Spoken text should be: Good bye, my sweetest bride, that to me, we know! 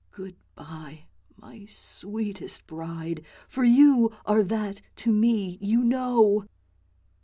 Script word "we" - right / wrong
wrong